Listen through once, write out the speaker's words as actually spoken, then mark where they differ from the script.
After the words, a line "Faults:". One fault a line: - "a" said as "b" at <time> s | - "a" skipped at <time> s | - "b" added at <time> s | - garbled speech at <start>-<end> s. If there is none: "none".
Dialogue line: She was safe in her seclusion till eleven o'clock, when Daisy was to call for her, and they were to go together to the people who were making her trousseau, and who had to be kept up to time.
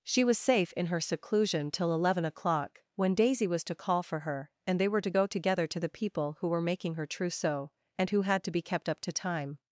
She was safe in her seclusion till eleven o'clock, when Daisy was to call for her, and they were to go together to the people who were making her trousseau, and who had to be kept up to time.
Faults:
none